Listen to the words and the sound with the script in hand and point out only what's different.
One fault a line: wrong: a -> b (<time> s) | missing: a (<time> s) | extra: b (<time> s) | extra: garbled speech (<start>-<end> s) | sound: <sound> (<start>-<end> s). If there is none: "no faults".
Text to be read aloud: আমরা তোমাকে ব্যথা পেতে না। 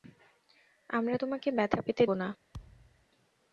sound: thud (2.5-3.1 s)